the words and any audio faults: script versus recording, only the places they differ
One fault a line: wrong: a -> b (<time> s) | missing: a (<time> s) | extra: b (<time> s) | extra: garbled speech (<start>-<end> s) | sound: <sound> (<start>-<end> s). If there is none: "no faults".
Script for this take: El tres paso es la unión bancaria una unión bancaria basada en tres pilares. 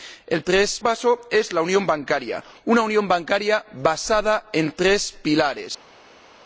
no faults